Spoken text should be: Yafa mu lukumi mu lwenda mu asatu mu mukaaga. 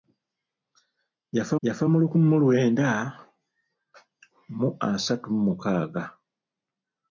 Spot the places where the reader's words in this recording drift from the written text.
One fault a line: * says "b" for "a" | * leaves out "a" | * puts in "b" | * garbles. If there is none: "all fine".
* puts in "yafa"